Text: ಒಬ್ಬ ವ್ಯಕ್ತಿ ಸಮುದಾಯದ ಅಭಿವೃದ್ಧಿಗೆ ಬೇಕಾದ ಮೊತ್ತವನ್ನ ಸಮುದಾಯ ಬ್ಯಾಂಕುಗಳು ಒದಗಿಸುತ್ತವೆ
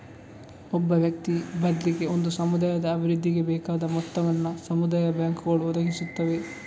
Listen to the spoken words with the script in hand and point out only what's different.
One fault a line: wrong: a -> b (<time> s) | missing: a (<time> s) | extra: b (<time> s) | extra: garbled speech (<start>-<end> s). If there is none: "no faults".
extra: ಬದ್ಲಿಗೆ ಒಂದು (1.6 s)